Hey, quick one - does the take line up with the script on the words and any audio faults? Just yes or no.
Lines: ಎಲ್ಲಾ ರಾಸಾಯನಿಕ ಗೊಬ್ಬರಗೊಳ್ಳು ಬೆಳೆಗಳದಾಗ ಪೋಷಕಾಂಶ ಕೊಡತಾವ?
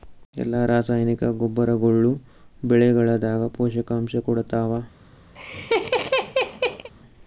no